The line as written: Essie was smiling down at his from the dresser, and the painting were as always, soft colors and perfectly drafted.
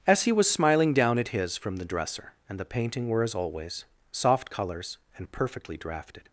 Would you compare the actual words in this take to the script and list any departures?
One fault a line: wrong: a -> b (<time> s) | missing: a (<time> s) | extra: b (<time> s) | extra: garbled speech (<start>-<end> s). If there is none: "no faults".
no faults